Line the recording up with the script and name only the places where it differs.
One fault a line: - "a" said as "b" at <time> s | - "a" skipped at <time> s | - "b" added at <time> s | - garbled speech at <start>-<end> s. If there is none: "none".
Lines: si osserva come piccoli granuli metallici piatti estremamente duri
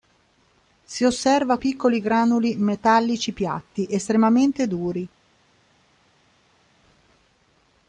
- "come" skipped at 1.6 s